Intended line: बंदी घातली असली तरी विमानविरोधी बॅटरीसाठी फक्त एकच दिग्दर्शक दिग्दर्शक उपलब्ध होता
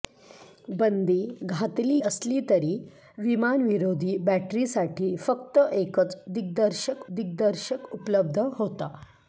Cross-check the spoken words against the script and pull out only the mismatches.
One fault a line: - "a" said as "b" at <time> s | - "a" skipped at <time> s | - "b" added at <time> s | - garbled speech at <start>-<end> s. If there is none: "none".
none